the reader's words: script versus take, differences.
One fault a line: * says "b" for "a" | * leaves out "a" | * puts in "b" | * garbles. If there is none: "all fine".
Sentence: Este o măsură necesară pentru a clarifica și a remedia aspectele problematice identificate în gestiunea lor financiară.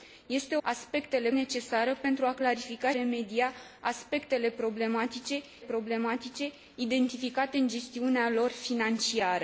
* says "aspectele" for "măsură"
* leaves out "și a"
* puts in "problematice"